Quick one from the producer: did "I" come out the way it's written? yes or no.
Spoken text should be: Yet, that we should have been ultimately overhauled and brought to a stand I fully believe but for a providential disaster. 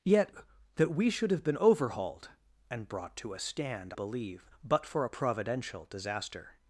no